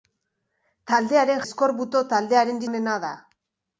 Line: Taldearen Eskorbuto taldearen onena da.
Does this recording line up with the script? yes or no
yes